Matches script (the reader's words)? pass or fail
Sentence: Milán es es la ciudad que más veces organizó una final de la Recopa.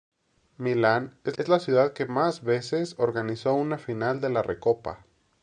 pass